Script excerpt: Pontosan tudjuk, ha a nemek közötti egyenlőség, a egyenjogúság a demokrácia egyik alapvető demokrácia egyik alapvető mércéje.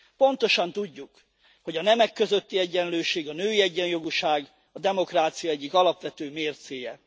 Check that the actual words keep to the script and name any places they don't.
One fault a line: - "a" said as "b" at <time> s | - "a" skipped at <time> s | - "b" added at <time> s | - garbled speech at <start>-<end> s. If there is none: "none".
- "ha" said as "hogy" at 1.6 s
- "női" added at 3.3 s
- "demokrácia egyik alapvető" skipped at 6.3 s